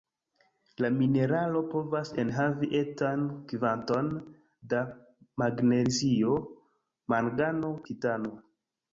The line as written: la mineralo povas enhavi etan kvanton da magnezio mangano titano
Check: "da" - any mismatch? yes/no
no